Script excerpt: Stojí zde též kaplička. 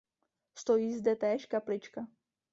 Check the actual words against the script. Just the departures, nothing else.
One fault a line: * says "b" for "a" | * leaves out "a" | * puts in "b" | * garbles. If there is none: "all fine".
all fine